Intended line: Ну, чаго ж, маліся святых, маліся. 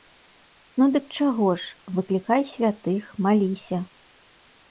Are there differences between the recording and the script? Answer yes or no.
yes